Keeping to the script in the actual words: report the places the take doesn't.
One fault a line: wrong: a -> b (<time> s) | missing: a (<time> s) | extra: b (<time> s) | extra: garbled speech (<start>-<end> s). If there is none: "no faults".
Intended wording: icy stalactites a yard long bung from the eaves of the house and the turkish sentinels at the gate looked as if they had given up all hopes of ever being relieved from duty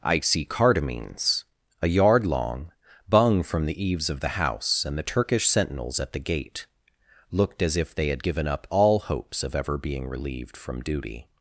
wrong: stalactites -> cardamines (0.5 s)